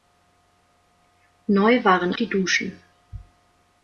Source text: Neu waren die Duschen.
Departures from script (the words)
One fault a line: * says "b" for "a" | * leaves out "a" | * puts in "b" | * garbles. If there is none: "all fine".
all fine